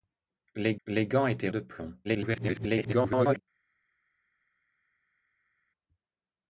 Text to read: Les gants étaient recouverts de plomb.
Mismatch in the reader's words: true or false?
true